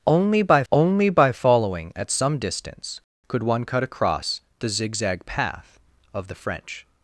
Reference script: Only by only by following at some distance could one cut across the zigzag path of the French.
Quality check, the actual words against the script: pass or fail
pass